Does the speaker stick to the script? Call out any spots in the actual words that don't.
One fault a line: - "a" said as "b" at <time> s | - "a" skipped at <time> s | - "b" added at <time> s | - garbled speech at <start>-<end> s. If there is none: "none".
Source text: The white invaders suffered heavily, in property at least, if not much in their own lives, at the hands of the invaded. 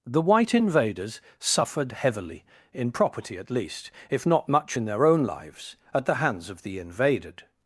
none